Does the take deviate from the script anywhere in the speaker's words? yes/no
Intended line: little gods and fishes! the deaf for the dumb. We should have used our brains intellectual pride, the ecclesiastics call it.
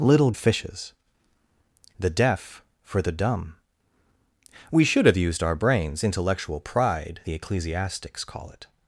yes